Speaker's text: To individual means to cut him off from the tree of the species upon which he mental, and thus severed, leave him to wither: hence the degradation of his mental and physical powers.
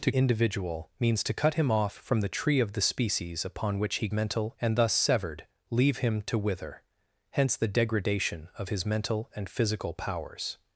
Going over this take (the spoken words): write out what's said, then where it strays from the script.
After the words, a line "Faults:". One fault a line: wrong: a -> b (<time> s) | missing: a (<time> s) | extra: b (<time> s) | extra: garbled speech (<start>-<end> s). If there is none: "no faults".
To individual means to cut him off from the tree of the species upon which he mental, and thus severed, leave him to wither: hence the degradation of his mental and physical powers.
Faults:
no faults